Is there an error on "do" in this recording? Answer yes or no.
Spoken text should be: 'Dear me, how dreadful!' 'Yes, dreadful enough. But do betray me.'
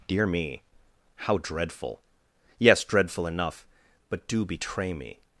no